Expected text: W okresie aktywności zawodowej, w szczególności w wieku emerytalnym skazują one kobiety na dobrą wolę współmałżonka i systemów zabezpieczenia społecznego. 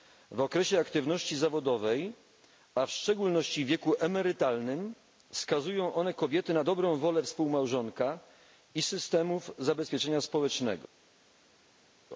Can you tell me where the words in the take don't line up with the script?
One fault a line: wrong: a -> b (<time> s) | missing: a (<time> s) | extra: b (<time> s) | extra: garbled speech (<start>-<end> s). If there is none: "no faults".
extra: a (2.8 s)